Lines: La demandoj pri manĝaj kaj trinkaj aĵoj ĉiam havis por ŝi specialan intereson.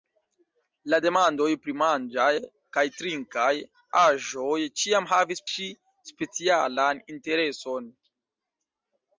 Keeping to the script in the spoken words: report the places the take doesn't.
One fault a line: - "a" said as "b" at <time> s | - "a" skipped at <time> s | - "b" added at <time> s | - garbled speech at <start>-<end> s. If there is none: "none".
- "por" skipped at 5.5 s